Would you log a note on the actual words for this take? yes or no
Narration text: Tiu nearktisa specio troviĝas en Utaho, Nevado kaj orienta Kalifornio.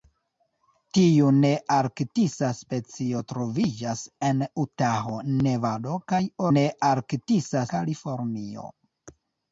yes